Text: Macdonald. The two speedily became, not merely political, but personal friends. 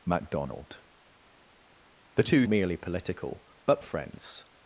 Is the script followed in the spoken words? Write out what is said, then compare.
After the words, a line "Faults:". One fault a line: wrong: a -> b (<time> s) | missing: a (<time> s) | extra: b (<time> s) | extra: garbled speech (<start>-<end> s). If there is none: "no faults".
Macdonald. The two merely political, but friends.
Faults:
missing: speedily became not (2.5 s)
missing: personal (3.8 s)